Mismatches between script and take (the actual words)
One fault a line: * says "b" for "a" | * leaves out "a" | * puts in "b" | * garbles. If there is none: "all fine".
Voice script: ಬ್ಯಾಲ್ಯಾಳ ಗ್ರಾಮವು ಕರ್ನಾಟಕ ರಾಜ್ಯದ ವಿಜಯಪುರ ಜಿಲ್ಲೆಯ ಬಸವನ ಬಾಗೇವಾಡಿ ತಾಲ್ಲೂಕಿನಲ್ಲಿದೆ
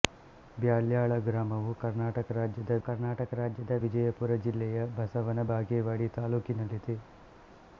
* puts in "ಕರ್ನಾಟಕ ರಾಜ್ಯದ"